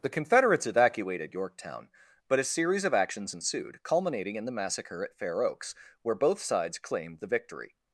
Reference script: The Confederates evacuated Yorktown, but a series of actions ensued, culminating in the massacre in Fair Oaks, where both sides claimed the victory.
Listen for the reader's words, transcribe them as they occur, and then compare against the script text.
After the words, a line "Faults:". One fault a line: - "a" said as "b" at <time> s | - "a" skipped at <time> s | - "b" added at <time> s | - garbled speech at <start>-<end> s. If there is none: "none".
The Confederates evacuated Yorktown, but a series of actions ensued, culminating in the massacre at Fair Oaks, where both sides claimed the victory.
Faults:
- "in" said as "at" at 5.0 s